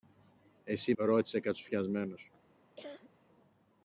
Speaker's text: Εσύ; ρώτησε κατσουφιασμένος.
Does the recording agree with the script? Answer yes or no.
yes